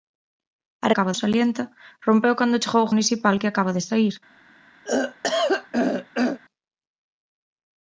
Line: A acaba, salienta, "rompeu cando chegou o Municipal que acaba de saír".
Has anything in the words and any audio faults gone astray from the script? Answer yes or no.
yes